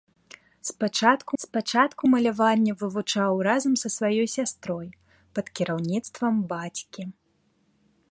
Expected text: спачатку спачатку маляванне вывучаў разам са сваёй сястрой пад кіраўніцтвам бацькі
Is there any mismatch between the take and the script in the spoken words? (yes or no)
no